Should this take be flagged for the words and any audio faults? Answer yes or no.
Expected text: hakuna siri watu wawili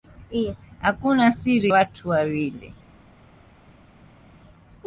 no